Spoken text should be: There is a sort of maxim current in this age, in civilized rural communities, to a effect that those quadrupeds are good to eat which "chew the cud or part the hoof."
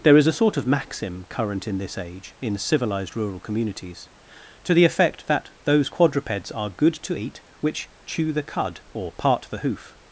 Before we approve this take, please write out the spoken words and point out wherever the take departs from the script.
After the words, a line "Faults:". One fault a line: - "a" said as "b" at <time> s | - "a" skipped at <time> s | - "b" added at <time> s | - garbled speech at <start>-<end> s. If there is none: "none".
There is a sort of maxim current in this age, in civilized rural communities, to the effect that those quadrupeds are good to eat which "chew the cud or part the hoof."
Faults:
- "a" said as "the" at 4.7 s